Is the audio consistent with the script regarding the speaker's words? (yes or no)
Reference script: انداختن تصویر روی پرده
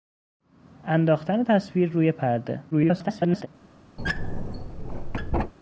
no